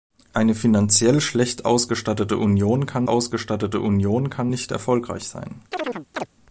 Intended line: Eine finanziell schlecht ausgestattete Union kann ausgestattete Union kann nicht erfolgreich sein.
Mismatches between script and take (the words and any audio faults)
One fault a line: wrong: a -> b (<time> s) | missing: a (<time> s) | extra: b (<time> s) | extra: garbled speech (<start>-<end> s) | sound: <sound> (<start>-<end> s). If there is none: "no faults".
sound: chirp (5.7-6.3 s)